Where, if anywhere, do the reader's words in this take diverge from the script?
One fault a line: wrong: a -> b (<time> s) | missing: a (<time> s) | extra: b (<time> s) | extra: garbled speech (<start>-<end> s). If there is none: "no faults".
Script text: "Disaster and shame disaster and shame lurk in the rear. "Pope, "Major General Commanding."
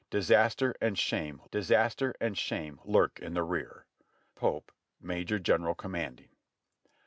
no faults